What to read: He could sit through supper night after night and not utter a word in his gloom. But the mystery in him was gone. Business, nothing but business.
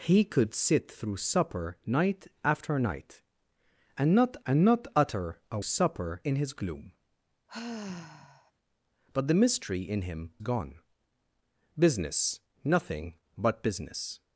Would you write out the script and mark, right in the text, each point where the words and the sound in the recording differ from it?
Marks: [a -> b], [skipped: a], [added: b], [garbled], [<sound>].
He could sit through supper night after night and not [added: and not] utter a [word -> supper] in his gloom. [sigh] But the mystery in him [skipped: was] gone. Business, nothing but business.